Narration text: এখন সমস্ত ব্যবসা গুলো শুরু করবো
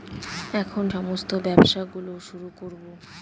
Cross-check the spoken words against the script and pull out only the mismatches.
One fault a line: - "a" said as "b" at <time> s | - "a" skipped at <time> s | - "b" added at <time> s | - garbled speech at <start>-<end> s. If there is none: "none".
none